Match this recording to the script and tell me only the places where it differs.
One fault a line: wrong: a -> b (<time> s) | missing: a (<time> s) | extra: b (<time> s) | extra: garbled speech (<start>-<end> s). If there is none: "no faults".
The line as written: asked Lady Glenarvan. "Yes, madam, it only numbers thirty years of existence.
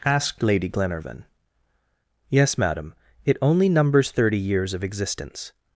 no faults